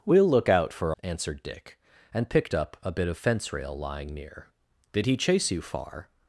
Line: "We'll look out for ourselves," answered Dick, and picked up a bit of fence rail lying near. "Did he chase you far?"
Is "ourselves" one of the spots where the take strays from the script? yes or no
yes